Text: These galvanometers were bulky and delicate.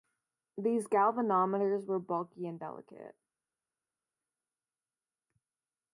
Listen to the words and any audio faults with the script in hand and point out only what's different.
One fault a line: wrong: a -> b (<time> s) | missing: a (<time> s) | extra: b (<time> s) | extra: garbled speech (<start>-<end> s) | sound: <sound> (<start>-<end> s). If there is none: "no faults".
no faults